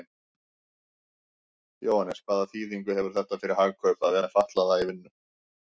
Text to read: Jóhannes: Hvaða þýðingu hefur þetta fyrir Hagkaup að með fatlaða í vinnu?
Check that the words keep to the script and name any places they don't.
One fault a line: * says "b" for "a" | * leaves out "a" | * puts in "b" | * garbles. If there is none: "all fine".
all fine